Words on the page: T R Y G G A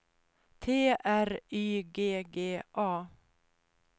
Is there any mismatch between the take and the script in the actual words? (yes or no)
no